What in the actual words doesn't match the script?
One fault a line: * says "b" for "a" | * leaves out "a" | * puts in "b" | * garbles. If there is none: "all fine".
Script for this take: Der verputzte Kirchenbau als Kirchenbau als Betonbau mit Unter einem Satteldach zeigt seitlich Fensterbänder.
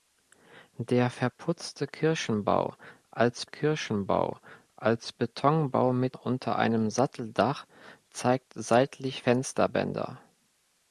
all fine